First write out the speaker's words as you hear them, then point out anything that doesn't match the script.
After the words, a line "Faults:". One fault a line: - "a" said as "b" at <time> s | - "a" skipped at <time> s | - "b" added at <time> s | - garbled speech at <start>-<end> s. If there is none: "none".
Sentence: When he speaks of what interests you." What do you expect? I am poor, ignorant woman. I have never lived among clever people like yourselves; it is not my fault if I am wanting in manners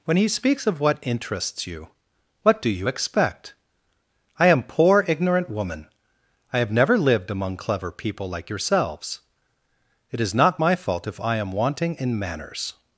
When he speaks of what interests you." What do you expect? I am poor, ignorant woman. I have never lived among clever people like yourselves; it is not my fault if I am wanting in manners
Faults:
none